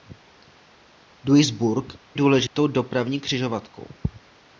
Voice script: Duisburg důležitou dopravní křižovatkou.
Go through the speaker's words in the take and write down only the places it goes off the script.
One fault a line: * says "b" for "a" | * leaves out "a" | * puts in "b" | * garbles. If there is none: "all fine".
all fine